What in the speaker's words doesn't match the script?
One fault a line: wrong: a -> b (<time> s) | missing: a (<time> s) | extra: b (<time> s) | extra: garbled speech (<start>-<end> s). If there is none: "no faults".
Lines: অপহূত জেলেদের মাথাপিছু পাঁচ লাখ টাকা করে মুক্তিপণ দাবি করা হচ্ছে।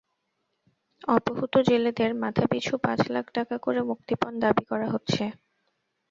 no faults